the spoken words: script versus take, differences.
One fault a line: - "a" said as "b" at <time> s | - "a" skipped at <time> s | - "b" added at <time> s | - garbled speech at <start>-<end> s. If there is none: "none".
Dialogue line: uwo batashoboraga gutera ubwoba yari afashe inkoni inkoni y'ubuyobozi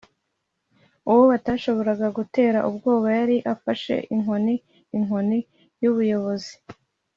none